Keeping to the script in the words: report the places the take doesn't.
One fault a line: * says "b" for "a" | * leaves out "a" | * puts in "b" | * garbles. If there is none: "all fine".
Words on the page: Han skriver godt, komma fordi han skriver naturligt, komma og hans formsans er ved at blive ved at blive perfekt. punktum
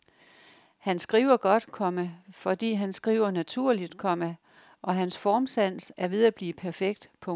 * leaves out "ved at blive"